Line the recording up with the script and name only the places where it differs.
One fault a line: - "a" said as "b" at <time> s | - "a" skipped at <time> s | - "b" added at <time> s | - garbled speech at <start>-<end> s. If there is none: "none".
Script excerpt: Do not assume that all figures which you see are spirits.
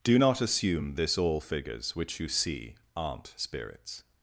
- "that" said as "this" at 0.9 s
- "are" said as "aren't" at 2.9 s